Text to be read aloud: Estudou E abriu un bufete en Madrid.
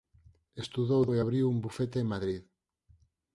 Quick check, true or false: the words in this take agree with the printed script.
true